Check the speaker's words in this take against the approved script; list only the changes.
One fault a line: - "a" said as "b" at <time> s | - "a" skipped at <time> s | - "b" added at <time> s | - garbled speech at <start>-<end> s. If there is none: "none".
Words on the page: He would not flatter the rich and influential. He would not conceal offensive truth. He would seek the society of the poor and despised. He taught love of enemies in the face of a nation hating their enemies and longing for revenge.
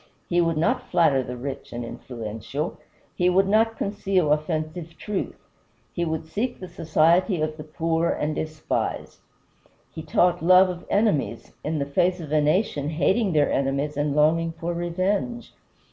none